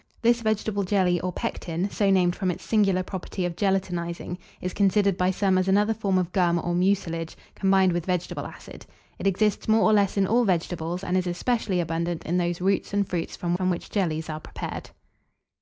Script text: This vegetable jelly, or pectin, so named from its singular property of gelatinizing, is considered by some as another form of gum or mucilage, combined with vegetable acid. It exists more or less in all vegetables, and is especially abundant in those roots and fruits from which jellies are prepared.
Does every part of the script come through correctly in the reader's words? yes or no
no